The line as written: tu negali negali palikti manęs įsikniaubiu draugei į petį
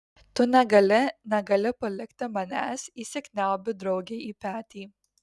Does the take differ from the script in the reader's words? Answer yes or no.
no